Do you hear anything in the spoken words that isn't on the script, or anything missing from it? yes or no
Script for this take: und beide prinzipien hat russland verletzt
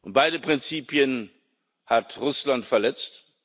no